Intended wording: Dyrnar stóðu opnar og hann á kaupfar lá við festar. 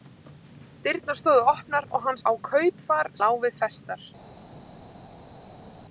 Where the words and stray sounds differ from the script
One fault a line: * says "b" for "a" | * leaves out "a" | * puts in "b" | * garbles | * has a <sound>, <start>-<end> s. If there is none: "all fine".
all fine